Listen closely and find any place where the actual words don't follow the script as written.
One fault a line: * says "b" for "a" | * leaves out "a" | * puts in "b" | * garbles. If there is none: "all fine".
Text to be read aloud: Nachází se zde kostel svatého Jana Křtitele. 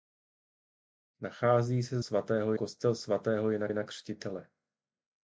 * says "svatého" for "zde"
* puts in "Jana"